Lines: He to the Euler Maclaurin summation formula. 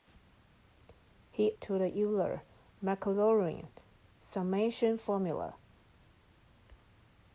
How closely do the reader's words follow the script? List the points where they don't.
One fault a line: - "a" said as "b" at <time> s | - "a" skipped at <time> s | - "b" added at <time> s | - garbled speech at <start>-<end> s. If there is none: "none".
none